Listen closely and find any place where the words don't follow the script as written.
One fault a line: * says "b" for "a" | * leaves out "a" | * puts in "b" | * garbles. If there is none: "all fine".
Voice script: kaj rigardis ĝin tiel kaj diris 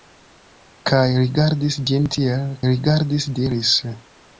* says "rigardis" for "kaj"